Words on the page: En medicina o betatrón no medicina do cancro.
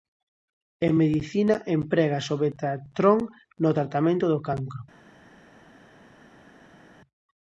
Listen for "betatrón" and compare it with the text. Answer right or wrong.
right